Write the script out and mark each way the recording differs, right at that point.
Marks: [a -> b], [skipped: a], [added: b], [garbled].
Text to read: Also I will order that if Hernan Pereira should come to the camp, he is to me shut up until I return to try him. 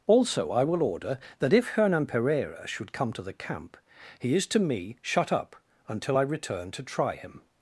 Also I will order that if Hernan Pereira should come to the camp, he is to me shut up until I return to try him.